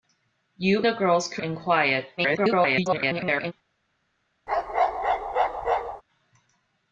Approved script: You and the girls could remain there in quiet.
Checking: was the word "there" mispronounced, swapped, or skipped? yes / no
yes